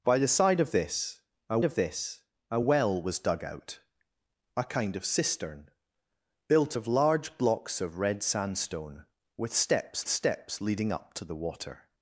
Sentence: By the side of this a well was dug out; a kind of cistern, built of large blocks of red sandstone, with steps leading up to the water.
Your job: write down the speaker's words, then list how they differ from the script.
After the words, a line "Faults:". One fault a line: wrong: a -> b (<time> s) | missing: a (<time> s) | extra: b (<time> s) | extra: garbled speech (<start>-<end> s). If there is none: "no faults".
By the side of this a of this a well was dug out; a kind of cistern, built of large blocks of red sandstone, with steps steps leading up to the water.
Faults:
extra: of this a (1.6 s)
extra: steps (10.1 s)